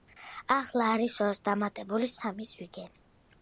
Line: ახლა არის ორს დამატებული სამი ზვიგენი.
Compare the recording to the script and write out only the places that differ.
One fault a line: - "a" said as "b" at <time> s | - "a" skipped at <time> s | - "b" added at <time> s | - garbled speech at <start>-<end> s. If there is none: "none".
none